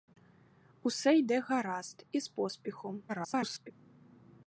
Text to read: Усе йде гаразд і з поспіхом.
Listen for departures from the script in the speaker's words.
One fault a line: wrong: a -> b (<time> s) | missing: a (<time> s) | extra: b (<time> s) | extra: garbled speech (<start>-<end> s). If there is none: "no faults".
extra: garbled speech (3.1-3.7 s)